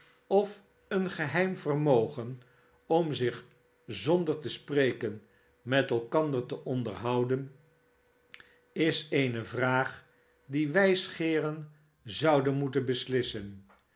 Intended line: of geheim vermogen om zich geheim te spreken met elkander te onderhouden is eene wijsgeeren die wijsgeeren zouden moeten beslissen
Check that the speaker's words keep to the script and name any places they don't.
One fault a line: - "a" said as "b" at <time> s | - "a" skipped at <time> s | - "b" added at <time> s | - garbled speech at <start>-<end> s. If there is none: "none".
- "een" added at 0.9 s
- "geheim" said as "zonder" at 3.9 s
- "wijsgeeren" said as "vraag" at 9.4 s